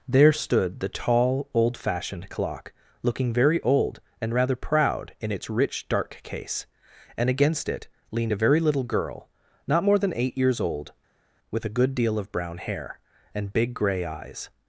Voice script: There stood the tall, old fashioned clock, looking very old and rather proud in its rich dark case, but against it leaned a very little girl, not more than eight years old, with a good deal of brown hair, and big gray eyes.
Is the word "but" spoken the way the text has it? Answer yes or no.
no